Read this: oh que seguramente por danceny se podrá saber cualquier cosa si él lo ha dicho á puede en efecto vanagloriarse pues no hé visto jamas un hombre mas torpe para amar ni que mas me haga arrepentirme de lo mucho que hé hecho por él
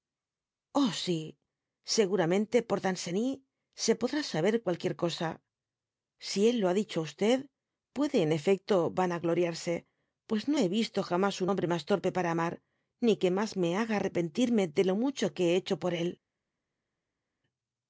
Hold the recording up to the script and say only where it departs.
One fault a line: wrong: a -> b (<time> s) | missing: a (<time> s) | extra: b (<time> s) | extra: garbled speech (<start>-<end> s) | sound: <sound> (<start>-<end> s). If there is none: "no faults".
wrong: que -> si (1.0 s)